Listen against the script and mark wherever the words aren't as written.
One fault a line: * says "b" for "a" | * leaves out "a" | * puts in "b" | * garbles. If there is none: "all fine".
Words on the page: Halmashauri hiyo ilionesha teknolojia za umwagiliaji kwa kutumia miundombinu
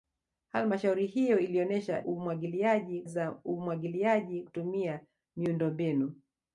* says "umwagiliaji" for "teknolojia"
* leaves out "kwa"